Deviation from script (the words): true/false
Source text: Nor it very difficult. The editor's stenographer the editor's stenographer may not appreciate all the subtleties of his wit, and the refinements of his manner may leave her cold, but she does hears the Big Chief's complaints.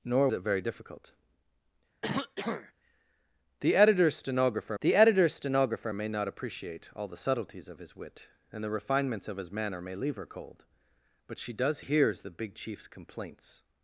false